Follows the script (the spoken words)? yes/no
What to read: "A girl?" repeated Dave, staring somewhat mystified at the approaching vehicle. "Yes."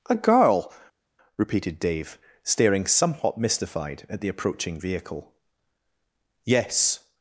yes